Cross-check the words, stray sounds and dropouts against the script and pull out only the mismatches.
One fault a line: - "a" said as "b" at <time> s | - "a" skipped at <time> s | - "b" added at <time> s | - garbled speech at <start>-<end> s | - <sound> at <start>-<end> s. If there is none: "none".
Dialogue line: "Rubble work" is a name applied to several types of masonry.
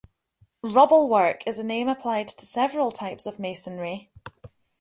none